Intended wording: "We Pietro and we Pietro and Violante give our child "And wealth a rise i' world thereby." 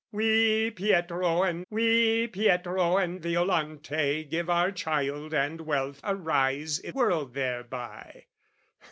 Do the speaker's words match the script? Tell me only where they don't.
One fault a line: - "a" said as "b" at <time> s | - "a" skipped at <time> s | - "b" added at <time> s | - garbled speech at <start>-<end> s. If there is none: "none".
none